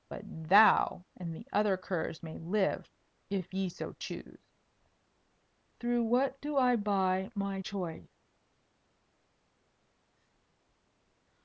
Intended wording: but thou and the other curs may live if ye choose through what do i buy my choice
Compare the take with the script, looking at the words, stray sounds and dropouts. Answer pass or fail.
fail